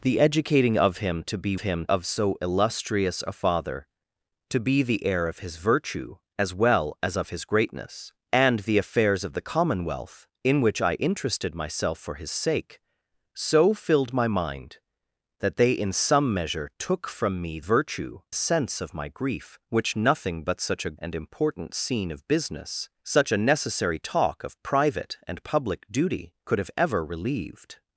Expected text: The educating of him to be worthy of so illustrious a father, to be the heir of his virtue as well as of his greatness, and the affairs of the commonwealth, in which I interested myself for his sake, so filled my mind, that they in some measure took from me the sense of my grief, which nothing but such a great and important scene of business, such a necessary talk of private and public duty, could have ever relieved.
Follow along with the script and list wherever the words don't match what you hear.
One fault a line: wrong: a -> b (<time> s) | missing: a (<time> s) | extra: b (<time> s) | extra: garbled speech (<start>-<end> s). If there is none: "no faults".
wrong: worthy -> him (1.6 s)
wrong: the -> virtue (17.6 s)
missing: great (21.0 s)